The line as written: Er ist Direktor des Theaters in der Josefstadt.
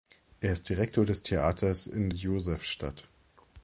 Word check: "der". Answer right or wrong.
wrong